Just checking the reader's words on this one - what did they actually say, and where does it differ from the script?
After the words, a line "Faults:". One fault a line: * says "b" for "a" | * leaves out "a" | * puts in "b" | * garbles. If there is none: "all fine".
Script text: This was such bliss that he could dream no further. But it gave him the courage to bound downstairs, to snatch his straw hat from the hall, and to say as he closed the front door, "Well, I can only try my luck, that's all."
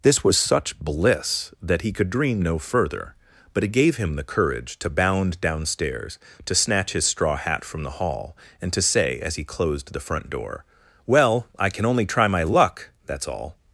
This was such bliss that he could dream no further. But it gave him the courage to bound downstairs, to snatch his straw hat from the hall, and to say as he closed the front door, "Well, I can only try my luck, that's all."
Faults:
all fine